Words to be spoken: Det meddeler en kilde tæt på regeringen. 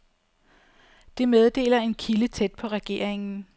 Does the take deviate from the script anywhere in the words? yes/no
no